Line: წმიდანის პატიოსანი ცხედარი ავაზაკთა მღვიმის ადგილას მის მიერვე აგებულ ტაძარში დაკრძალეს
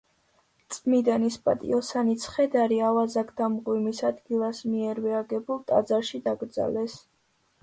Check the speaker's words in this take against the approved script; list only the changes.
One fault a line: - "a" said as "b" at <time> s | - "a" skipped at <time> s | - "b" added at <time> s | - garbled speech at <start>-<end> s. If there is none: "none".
- "მის" skipped at 4.7 s